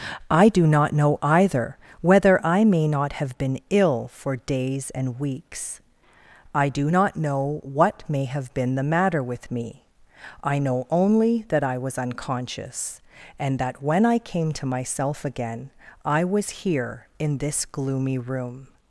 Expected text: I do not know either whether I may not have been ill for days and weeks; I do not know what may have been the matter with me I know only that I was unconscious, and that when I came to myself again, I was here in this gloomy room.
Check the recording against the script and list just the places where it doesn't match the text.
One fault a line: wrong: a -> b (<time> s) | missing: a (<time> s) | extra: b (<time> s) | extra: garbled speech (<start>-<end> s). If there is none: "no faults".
no faults